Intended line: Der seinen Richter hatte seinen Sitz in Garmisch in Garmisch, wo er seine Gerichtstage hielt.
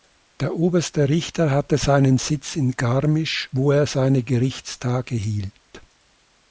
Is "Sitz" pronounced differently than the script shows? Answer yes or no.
no